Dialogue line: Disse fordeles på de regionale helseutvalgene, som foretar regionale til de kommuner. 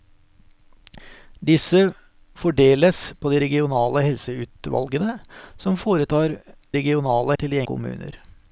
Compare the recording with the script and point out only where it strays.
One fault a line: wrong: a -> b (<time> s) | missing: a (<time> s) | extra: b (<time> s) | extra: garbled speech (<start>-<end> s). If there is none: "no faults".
no faults